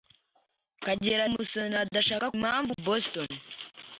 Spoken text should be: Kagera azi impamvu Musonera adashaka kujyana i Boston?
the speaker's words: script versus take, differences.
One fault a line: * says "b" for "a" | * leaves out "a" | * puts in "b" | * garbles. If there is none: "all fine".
* leaves out "azi impamvu"
* says "impamvu" for "kujyana"